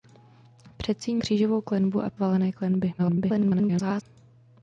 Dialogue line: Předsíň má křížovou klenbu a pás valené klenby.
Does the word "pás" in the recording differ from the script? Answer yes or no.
yes